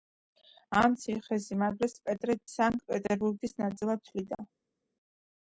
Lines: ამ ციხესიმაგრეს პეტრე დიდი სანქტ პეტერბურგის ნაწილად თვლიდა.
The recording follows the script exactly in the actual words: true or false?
false